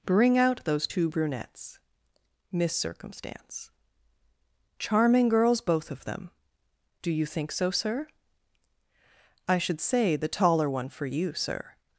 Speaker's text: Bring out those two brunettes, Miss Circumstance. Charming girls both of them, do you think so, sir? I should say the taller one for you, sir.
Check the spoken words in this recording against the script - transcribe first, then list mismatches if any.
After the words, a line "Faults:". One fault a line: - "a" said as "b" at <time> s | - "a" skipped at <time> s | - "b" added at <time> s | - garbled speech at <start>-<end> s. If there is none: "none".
Bring out those two brunettes, Miss Circumstance. Charming girls both of them, do you think so, sir? I should say the taller one for you, sir.
Faults:
none